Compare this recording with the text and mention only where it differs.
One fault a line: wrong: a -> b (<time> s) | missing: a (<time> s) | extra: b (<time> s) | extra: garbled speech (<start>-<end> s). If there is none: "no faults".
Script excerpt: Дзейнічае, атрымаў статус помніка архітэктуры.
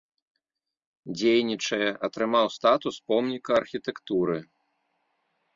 no faults